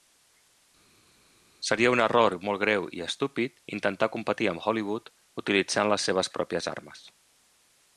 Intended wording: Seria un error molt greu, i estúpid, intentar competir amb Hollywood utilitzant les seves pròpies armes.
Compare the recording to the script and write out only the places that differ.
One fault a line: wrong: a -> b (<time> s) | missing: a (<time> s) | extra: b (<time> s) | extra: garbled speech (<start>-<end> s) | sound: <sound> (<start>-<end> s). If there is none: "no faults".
no faults